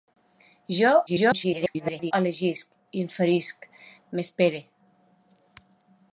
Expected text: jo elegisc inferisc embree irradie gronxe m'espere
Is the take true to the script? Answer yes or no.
no